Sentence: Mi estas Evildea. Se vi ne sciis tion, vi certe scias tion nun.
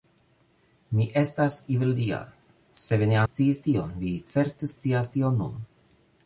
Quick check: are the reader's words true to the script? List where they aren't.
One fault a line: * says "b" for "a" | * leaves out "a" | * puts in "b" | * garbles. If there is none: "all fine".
all fine